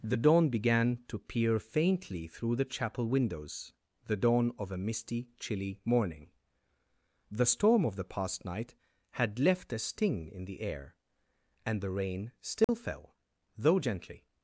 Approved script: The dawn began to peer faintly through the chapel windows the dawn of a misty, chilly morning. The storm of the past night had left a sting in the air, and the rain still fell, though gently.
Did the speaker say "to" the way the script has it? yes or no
yes